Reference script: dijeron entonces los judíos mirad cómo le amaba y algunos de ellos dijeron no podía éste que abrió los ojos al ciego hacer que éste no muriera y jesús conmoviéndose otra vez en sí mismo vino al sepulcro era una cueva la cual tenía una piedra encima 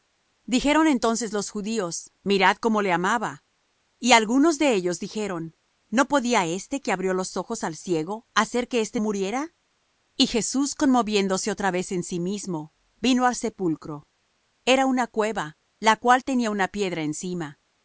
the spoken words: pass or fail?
fail